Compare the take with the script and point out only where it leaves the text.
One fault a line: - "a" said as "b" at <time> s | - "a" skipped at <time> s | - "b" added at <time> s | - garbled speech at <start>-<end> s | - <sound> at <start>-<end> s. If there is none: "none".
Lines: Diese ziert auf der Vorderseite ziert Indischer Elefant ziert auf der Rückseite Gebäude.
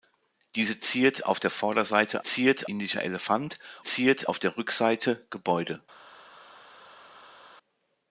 none